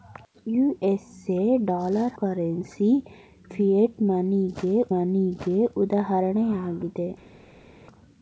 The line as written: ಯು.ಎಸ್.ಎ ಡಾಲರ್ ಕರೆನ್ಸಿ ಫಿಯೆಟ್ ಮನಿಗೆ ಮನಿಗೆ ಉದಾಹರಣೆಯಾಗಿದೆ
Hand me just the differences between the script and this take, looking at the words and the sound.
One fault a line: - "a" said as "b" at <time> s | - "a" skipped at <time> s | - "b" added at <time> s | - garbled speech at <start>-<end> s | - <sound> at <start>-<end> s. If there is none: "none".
none